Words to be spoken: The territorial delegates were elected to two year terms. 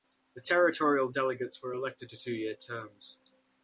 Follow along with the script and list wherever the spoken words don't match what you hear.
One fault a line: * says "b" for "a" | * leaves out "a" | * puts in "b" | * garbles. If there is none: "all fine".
all fine